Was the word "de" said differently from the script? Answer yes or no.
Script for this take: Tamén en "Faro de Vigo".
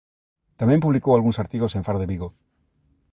no